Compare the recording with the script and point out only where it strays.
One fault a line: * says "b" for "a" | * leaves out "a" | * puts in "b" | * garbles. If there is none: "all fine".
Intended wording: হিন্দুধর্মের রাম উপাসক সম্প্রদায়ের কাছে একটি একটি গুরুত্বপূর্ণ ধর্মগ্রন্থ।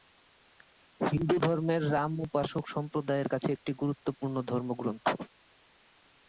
* leaves out "একটি"